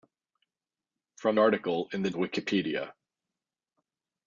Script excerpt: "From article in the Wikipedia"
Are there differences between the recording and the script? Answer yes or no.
no